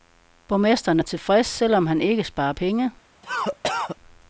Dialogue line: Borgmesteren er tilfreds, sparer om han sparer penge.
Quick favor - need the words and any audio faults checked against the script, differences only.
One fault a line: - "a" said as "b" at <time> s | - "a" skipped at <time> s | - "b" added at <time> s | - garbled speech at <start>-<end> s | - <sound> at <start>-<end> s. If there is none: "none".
- "sparer" said as "selv" at 1.5 s
- "ikke" added at 2.0 s
- cough at 3.2-4.0 s